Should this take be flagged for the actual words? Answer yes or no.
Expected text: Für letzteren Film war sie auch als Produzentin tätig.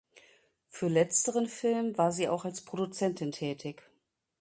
no